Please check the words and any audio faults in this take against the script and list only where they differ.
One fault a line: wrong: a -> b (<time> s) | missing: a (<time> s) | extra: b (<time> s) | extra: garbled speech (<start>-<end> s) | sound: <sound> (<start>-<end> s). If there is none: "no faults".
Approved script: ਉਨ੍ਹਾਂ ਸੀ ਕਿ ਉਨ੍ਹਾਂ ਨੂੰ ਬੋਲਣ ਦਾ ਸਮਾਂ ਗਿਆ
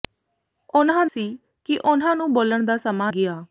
no faults